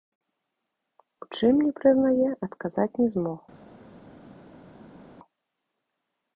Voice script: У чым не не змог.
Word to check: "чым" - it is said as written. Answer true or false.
true